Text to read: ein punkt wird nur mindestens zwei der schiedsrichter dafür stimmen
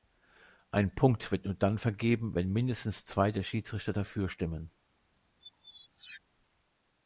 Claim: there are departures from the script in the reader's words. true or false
true